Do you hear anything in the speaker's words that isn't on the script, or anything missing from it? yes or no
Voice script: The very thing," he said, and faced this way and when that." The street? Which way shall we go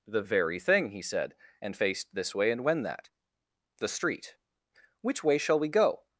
no